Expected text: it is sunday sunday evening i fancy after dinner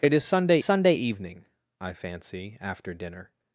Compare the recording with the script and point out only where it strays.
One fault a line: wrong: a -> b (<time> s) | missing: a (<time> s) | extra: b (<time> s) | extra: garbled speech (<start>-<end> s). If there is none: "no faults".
no faults